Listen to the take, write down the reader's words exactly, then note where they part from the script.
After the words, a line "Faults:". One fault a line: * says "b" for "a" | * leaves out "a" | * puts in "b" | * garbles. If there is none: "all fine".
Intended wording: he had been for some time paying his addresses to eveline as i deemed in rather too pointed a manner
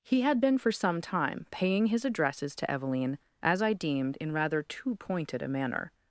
he had been for some time paying his addresses to eveline as i deemed in rather too pointed a manner
Faults:
all fine